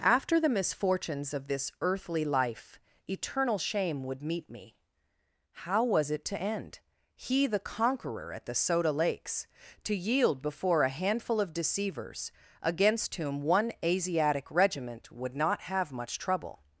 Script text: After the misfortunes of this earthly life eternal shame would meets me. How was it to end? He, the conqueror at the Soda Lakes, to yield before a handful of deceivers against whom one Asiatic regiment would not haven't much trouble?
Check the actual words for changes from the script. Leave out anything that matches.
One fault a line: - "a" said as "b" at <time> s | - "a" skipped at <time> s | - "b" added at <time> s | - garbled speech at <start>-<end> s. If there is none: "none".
- "meets" said as "meet" at 4.2 s
- "haven't" said as "have" at 15.6 s